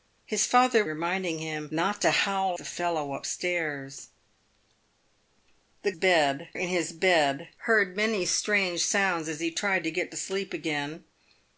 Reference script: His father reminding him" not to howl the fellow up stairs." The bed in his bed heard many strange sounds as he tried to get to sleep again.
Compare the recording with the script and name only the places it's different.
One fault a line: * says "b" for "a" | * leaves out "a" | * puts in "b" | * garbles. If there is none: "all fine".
all fine